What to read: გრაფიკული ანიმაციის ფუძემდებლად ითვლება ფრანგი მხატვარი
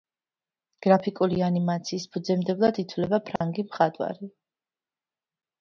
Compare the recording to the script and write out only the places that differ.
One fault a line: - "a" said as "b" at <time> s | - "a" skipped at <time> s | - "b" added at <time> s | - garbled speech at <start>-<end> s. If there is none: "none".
none